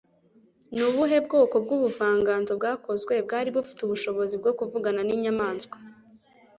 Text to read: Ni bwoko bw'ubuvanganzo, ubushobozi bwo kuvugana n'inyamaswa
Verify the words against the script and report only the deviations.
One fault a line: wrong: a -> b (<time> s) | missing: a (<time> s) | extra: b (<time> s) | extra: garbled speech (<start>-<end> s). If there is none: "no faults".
extra: ubuhe (0.9 s)
extra: bwakozwe bwari bufite (2.6 s)